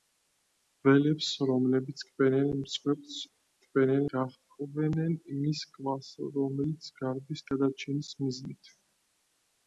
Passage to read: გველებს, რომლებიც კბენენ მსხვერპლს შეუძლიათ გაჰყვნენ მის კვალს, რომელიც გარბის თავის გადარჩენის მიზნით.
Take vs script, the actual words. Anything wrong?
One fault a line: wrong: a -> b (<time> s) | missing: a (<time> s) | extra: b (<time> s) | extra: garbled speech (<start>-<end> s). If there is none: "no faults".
wrong: შეუძლიათ -> კბენენ (3.6 s)
missing: თავის (7.4 s)